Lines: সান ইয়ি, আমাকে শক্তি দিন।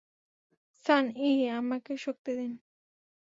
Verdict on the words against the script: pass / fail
pass